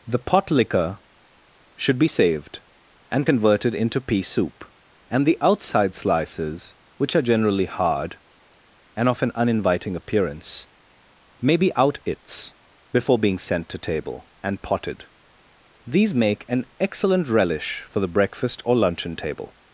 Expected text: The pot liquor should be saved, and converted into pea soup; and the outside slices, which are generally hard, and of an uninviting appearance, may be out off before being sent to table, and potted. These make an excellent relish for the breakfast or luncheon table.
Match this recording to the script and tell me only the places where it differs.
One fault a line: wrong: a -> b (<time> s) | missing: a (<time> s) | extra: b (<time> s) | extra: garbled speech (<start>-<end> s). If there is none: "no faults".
wrong: off -> its (12.0 s)